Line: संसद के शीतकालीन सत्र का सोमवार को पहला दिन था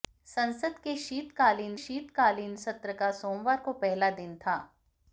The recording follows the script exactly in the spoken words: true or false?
false